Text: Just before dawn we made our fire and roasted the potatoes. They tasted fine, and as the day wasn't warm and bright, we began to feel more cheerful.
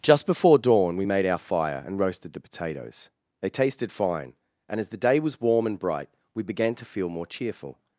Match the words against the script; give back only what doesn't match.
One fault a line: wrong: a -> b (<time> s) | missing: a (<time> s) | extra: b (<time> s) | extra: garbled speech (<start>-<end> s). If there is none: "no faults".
wrong: wasn't -> was (5.2 s)